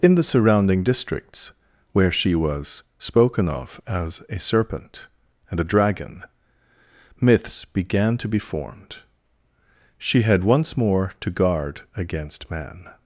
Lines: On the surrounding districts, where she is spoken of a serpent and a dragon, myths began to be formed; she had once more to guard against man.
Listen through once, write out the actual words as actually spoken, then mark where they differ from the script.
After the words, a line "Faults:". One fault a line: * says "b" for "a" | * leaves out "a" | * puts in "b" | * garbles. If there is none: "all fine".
In the surrounding districts, where she was spoken of as a serpent and a dragon, myths began to be formed; she had once more to guard against man.
Faults:
* says "In" for "On"
* says "was" for "is"
* puts in "as"